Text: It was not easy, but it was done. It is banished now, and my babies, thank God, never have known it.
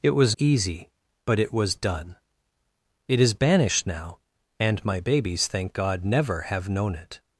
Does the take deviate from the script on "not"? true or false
true